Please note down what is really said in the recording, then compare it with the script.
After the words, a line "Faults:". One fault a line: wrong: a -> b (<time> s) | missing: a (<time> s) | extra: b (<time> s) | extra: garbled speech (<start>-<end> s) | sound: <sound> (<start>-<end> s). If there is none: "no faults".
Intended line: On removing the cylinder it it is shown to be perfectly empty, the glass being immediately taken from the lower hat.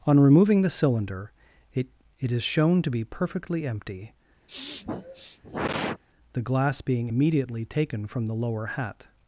On removing the cylinder it it is shown to be perfectly empty, the glass being immediately taken from the lower hat.
Faults:
sound: sniff (4.5-6.0 s)